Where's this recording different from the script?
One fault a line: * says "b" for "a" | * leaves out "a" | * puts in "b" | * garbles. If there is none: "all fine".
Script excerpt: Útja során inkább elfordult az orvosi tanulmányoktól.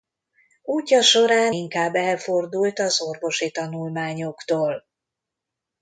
all fine